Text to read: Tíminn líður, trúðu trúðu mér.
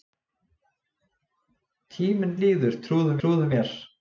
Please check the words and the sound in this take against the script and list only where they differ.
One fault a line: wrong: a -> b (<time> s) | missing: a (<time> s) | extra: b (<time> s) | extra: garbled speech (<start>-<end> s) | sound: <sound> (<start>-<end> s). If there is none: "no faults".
no faults